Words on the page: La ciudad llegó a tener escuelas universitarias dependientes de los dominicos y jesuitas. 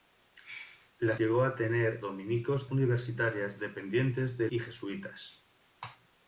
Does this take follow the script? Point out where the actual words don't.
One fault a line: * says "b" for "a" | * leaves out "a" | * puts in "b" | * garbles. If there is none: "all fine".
* leaves out "ciudad"
* says "dominicos" for "escuelas"
* leaves out "los dominicos"